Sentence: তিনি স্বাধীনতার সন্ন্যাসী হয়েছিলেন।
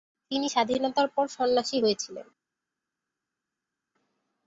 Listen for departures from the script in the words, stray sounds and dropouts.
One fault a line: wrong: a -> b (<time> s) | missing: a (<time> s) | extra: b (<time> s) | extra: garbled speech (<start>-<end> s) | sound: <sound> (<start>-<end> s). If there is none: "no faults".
extra: পর (1.1 s)